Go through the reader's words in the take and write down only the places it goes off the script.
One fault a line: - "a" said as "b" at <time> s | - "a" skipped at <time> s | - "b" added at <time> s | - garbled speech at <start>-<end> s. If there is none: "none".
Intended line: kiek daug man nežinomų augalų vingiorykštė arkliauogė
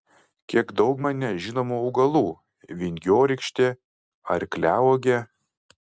none